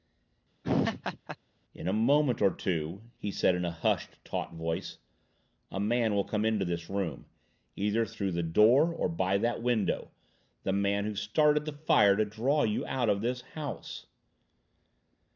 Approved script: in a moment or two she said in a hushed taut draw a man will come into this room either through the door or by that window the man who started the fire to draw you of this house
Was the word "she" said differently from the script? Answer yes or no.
yes